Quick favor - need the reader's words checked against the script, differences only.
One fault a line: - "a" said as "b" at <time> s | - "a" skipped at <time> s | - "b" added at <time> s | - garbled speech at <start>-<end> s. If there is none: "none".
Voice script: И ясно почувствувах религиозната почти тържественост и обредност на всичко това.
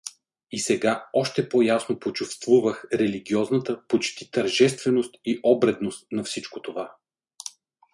- "сега още по" added at 0.6 s